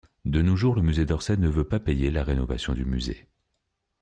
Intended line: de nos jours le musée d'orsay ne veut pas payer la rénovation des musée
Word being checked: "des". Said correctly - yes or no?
no